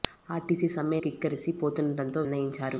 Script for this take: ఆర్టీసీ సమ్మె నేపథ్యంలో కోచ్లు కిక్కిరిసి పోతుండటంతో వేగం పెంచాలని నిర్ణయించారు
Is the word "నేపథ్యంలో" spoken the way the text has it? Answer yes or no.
no